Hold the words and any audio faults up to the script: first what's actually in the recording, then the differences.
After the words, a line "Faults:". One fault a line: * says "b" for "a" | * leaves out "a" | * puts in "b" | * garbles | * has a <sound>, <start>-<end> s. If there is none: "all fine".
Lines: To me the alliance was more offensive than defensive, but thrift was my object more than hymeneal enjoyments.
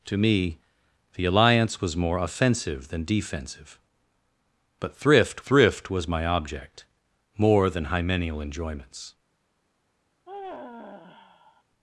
To me the alliance was more offensive than defensive, but thrift thrift was my object more than hymeneal enjoyments.
Faults:
* puts in "thrift"
* has a sigh, 10.3-11.6 s